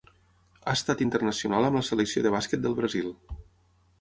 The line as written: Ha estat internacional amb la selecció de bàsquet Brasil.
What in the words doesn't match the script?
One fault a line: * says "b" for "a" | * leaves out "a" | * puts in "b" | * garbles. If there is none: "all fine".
* puts in "del"